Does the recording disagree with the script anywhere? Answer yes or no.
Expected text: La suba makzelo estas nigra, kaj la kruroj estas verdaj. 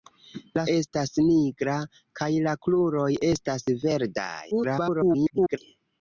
yes